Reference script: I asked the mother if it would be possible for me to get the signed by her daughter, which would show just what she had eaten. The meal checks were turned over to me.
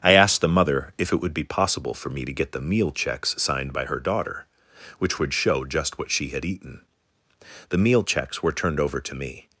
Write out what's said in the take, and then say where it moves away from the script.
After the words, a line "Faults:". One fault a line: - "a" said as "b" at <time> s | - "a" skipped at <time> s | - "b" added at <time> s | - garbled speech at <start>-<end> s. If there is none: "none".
I asked the mother if it would be possible for me to get the meal checks signed by her daughter, which would show just what she had eaten. The meal checks were turned over to me.
Faults:
- "meal checks" added at 2.6 s